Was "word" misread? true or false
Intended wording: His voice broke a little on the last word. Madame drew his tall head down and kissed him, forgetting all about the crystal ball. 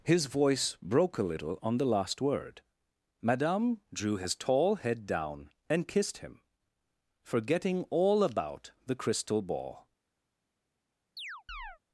false